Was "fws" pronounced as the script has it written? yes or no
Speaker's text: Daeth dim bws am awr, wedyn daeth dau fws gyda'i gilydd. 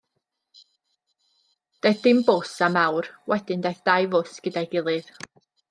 yes